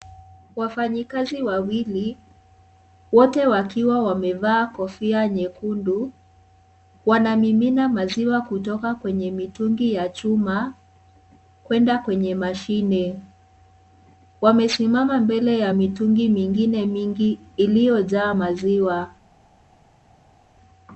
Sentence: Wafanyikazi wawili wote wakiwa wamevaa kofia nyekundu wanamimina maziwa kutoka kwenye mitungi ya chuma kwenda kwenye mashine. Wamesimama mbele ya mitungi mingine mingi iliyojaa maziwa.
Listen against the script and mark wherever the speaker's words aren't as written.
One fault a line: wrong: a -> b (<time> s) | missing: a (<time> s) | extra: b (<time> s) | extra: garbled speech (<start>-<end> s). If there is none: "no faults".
no faults